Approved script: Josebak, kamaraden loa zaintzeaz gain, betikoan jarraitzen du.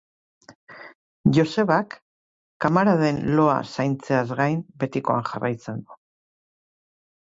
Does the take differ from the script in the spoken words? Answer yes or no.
no